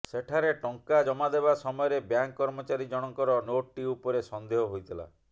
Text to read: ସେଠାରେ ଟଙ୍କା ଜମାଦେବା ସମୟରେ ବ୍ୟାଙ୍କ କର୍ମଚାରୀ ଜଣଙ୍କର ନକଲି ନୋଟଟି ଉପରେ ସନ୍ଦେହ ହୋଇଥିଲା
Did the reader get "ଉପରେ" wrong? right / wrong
right